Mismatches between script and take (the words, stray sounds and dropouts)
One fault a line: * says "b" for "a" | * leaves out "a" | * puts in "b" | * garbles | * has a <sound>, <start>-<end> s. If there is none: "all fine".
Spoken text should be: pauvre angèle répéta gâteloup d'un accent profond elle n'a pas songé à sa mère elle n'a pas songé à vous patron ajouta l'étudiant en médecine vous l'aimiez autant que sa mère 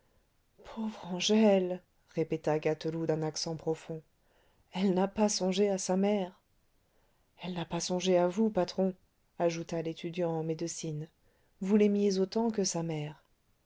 all fine